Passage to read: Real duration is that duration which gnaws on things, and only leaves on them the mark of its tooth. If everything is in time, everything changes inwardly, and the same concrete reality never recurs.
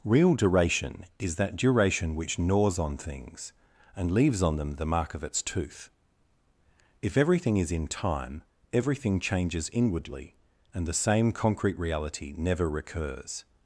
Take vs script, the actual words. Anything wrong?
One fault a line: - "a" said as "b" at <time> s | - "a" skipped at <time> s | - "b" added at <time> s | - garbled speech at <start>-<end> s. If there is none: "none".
- "only" skipped at 4.1 s